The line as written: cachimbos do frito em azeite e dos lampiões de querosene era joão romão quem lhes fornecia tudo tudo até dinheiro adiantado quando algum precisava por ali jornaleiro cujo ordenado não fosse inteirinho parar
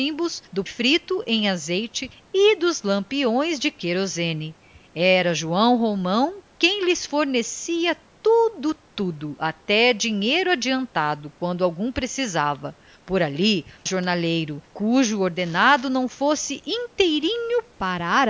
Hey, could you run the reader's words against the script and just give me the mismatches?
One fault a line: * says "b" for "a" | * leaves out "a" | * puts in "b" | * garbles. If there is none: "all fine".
all fine